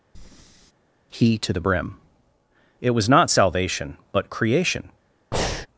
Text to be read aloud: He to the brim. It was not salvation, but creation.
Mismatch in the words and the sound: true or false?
true